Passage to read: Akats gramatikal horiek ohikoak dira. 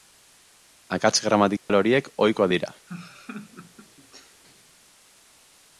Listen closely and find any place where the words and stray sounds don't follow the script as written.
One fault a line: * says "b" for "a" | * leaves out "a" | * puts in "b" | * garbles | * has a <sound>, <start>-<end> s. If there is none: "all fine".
* has a dropout, 1.6-1.7 s
* has a laugh, 2.9-4.4 s